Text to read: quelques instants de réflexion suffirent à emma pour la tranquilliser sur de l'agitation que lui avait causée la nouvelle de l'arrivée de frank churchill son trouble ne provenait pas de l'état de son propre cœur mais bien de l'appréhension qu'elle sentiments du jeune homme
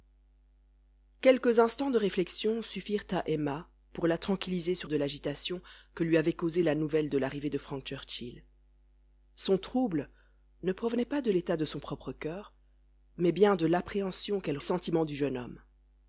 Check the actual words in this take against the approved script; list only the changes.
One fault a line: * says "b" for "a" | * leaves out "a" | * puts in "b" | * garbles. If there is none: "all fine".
all fine